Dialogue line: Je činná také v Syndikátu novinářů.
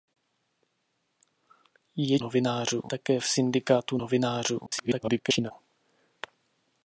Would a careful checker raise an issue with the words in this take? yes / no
yes